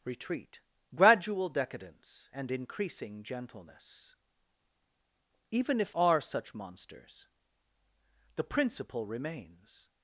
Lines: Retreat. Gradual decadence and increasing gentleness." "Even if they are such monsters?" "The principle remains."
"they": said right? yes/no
no